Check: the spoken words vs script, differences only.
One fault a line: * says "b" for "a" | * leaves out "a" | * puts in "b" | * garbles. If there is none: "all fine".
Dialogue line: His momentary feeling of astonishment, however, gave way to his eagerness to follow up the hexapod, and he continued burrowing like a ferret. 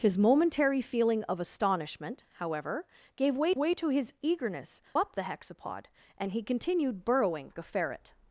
* puts in "way"
* leaves out "to follow"
* leaves out "like"